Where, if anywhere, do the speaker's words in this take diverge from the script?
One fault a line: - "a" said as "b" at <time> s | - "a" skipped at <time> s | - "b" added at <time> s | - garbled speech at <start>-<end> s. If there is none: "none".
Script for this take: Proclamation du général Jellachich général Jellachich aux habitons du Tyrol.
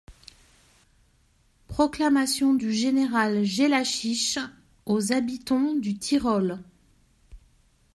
- "général Jellachich" skipped at 4.4 s